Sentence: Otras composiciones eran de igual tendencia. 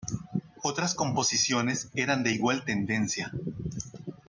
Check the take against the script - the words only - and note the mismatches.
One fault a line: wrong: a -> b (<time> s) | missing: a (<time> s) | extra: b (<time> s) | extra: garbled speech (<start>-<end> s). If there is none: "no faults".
no faults